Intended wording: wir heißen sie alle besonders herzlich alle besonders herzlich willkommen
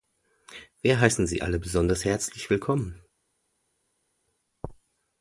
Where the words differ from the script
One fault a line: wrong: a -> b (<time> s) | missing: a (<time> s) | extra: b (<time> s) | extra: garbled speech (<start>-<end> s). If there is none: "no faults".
missing: alle besonders herzlich (2.5 s)